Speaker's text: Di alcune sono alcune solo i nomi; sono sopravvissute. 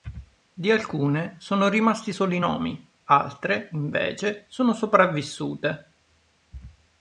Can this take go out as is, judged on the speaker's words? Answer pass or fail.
fail